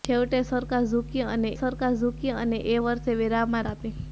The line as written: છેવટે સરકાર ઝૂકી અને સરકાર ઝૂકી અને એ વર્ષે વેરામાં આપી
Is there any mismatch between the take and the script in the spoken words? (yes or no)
no